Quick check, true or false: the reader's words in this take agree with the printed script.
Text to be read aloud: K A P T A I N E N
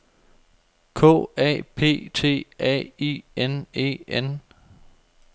true